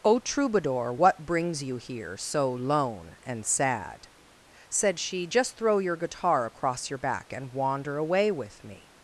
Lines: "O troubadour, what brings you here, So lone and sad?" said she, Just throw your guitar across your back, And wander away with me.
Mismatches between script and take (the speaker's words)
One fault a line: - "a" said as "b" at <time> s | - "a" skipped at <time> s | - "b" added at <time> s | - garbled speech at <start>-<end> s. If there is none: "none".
none